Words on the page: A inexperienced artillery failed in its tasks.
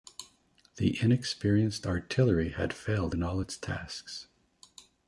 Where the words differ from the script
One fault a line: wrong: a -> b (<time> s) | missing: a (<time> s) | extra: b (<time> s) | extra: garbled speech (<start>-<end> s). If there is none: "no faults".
wrong: A -> The (0.8 s)
extra: had (2.6 s)
extra: all (3.2 s)